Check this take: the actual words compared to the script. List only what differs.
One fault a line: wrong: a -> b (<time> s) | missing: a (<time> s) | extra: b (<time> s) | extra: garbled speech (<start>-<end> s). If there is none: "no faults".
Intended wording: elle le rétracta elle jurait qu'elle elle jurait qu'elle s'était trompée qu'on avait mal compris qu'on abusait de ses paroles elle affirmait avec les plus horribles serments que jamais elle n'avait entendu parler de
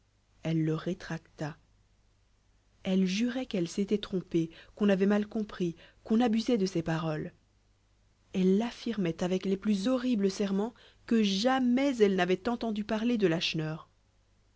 missing: elle jurait qu'elle (3.7 s)